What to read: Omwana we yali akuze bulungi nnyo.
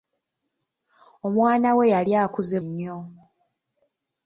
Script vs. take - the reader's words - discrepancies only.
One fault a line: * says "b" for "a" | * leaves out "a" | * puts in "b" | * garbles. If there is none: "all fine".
* leaves out "bulungi"